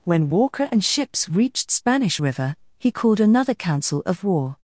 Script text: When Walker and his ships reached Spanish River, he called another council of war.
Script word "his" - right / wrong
wrong